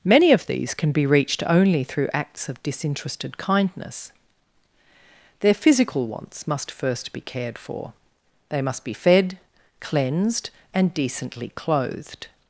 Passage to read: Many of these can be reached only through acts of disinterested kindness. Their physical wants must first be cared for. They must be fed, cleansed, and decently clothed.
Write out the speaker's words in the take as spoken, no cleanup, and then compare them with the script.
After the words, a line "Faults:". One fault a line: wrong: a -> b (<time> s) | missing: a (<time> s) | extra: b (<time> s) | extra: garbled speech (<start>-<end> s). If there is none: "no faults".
Many of these can be reached only through acts of disinterested kindness. Their physical wants must first be cared for. They must be fed, cleansed, and decently clothed.
Faults:
no faults